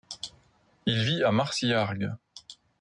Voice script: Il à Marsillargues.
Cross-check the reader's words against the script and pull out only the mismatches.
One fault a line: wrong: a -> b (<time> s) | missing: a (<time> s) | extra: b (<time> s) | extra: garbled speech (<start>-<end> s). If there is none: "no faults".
extra: vit (1.0 s)